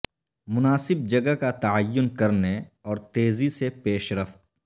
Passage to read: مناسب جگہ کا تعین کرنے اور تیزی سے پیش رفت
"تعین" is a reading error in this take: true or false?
false